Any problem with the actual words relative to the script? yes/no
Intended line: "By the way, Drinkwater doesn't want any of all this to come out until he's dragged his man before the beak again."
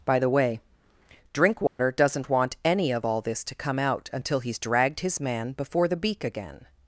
no